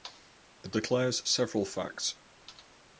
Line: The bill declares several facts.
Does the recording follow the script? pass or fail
fail